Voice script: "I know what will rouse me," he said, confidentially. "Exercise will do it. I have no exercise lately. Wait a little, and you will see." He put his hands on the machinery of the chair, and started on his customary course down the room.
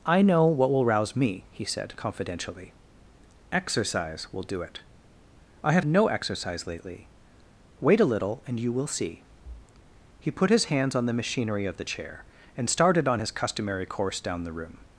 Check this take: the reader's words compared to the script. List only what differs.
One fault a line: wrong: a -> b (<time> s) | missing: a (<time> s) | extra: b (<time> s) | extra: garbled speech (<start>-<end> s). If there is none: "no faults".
no faults